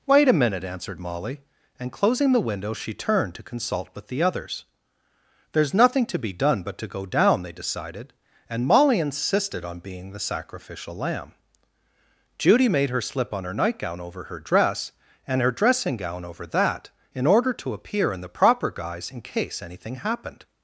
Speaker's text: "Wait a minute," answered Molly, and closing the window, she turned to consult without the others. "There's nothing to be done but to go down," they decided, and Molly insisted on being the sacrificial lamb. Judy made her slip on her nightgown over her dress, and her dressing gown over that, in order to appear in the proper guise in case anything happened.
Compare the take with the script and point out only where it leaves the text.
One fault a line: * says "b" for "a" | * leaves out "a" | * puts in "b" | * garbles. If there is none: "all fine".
* says "with" for "without"